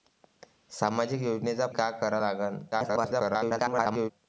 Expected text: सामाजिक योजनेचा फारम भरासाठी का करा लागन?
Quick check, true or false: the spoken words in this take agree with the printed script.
false